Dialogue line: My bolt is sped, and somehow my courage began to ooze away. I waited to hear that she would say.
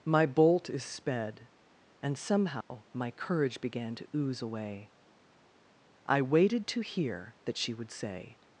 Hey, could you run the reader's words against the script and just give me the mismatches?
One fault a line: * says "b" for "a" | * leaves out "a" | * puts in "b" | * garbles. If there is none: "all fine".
all fine